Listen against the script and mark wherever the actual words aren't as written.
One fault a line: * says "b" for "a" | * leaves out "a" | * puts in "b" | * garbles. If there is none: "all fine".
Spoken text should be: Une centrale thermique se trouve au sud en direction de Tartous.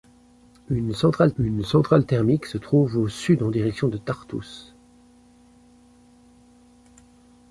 * puts in "une centrale"